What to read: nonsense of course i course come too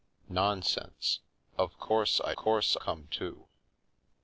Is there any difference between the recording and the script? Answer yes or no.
no